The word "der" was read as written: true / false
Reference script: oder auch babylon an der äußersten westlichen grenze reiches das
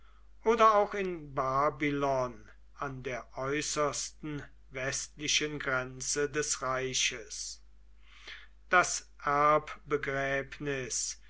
true